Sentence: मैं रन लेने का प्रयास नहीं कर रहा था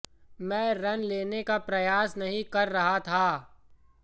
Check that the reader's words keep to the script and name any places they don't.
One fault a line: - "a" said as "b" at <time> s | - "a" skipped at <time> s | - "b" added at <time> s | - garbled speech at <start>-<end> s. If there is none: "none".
none